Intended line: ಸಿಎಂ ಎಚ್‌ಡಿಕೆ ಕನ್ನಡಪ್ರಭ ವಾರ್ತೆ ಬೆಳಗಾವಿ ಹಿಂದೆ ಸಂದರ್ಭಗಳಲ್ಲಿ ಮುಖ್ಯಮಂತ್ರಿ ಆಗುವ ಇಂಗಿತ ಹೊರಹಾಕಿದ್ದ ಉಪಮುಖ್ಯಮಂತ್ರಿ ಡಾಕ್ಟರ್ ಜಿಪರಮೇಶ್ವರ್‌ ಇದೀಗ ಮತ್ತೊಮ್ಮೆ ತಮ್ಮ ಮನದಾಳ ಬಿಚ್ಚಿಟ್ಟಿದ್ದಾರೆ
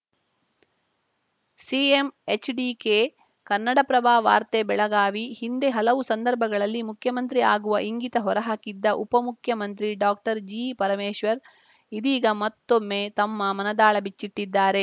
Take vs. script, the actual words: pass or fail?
fail